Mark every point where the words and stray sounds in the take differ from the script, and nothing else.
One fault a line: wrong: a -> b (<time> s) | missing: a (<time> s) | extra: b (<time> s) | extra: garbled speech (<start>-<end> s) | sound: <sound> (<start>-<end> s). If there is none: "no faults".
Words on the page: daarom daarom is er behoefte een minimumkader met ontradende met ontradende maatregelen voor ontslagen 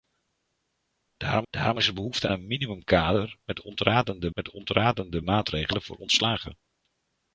no faults